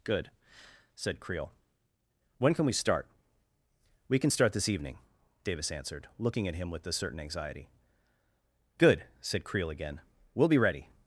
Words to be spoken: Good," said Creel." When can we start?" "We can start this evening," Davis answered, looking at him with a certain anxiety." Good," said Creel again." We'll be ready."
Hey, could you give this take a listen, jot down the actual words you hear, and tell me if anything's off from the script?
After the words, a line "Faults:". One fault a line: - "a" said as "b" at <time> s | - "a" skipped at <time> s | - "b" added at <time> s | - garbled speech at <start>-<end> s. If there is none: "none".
Good," said Creel." When can we start?" "We can start this evening," Davis answered, looking at him with a certain anxiety." Good," said Creel again." We'll be ready."
Faults:
none